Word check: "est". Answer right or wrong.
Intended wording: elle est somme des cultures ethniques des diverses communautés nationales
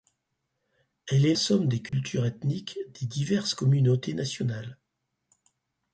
right